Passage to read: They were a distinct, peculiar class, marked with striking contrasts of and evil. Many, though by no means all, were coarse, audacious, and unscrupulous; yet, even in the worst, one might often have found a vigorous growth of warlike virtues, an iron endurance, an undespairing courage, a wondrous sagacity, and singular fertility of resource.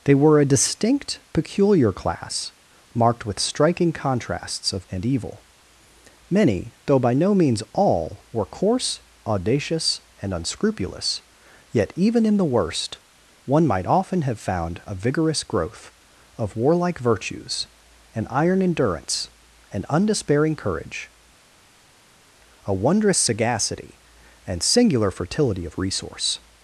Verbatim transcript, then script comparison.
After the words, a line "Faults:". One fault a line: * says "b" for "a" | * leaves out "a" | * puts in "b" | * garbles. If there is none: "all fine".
They were a distinct, peculiar class, marked with striking contrasts of and evil. Many, though by no means all, were coarse, audacious, and unscrupulous; yet, even in the worst, one might often have found a vigorous growth of warlike virtues, an iron endurance, an undespairing courage, a wondrous sagacity, and singular fertility of resource.
Faults:
all fine